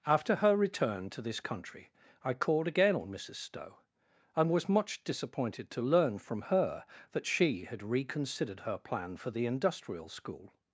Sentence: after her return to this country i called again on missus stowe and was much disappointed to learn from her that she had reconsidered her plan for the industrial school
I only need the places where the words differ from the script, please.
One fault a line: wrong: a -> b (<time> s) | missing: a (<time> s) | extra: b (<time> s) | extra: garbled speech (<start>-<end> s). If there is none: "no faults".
no faults